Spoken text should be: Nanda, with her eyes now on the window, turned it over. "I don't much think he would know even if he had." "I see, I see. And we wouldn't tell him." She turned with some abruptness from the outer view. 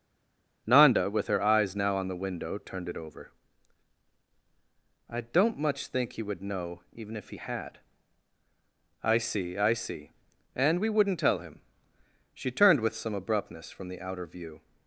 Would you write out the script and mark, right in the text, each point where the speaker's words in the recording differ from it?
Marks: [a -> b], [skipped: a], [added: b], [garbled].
Nanda, with her eyes now on the window, turned it over. "I don't much think he would know even if he had." "I see, I see. And we wouldn't tell him." She turned with some abruptness from the outer view.